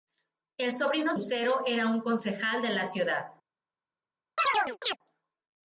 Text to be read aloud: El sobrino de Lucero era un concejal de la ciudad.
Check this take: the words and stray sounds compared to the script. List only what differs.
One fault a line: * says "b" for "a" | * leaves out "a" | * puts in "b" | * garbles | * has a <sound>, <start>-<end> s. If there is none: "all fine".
* leaves out "de"
* has a chirp, 4.4-5.0 s